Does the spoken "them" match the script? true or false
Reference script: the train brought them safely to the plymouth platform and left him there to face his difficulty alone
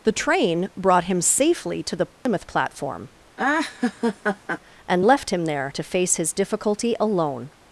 false